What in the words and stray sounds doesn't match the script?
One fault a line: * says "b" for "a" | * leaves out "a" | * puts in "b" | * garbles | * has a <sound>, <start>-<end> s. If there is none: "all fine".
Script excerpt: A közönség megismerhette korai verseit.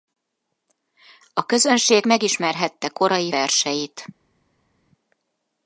all fine